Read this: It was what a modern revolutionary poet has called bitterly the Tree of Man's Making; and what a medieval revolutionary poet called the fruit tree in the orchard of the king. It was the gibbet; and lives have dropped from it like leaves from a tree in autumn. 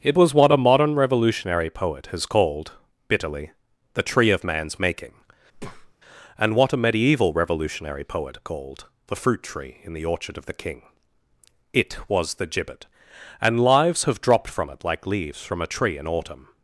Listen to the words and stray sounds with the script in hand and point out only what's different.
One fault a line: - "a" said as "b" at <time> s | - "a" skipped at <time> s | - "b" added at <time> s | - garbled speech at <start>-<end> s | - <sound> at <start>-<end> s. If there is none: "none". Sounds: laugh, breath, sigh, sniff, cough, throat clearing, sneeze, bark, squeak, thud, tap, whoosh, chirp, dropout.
- breath at 5.5-5.9 s